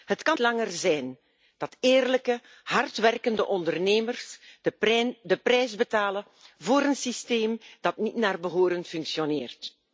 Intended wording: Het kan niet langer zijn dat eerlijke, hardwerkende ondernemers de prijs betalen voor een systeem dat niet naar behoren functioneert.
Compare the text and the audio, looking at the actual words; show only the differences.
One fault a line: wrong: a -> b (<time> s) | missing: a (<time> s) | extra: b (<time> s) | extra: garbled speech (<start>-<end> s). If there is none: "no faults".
missing: niet (0.4 s)